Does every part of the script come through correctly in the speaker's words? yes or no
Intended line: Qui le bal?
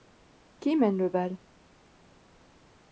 no